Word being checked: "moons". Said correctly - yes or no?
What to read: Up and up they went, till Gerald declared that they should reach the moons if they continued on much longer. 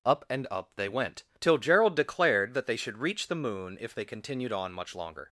no